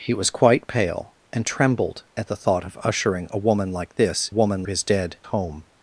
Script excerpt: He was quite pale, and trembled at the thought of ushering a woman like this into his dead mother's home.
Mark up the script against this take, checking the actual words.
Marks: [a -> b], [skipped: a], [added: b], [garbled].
He was quite pale, and trembled at the thought of ushering a woman like this [into -> woman] his dead [skipped: mother's] home.